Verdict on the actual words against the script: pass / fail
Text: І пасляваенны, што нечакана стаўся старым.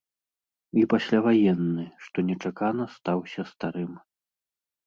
pass